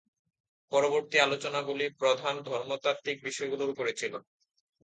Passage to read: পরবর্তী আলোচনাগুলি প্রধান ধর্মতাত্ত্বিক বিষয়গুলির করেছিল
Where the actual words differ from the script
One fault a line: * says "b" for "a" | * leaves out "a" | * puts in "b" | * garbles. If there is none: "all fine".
all fine